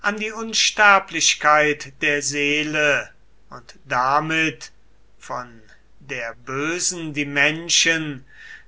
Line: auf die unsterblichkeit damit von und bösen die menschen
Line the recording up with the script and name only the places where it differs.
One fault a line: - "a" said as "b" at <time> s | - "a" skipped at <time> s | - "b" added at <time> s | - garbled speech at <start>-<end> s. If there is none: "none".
- "auf" said as "an" at 0.0 s
- "der seele und" added at 2.0 s
- "und" said as "der" at 6.0 s